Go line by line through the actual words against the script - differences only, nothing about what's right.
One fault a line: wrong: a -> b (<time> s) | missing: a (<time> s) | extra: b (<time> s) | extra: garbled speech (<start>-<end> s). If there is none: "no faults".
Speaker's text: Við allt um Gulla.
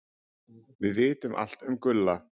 extra: vitum (1.0 s)